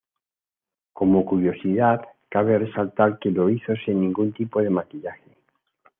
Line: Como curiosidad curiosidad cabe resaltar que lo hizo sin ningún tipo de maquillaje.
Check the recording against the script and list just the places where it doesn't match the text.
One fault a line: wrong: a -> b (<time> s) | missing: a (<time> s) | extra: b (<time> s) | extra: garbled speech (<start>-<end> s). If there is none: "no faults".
missing: curiosidad (2.0 s)